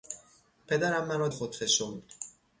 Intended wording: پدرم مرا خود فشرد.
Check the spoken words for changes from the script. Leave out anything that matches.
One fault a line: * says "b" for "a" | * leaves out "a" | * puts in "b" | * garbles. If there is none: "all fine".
all fine